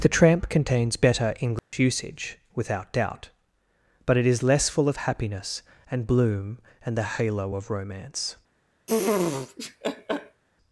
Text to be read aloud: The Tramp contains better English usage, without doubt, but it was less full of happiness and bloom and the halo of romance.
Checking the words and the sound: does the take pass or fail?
fail